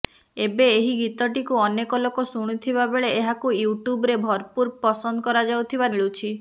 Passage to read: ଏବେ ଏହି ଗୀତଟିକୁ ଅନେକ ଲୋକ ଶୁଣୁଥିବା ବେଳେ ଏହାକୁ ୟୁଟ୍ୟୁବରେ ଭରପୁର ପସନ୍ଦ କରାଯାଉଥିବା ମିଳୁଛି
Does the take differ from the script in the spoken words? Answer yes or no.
no